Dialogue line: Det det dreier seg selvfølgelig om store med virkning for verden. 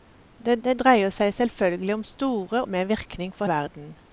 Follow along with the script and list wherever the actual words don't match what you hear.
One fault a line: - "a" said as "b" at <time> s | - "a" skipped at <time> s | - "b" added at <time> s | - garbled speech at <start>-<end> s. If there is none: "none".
none